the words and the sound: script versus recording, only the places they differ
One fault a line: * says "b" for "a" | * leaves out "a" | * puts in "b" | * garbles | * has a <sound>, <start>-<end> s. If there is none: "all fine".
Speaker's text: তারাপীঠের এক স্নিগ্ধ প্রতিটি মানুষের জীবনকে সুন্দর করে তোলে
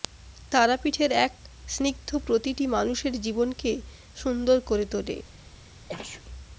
* has a sneeze, 5.9-6.2 s